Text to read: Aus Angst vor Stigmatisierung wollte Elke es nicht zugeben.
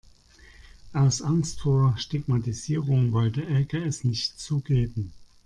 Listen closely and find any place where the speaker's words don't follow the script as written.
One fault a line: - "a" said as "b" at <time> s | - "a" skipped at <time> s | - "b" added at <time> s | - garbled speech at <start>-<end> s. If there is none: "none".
none